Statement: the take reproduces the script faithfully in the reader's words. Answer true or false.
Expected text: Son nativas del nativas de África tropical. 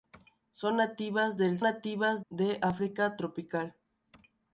true